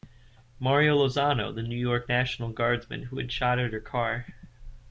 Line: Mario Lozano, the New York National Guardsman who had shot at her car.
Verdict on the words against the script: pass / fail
pass